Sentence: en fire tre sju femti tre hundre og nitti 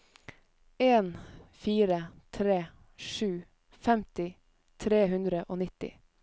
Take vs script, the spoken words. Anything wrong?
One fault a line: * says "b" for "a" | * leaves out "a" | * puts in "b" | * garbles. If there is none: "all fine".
all fine